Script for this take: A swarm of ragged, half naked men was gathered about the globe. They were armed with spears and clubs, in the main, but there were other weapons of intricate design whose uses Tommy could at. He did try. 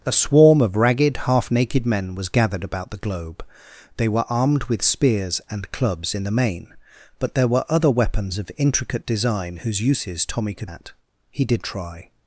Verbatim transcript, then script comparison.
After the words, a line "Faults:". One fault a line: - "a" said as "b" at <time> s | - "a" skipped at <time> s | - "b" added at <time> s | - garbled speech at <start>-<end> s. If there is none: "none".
A swarm of ragged, half naked men was gathered about the globe. They were armed with spears and clubs, in the main, but there were other weapons of intricate design whose uses Tommy could at. He did try.
Faults:
none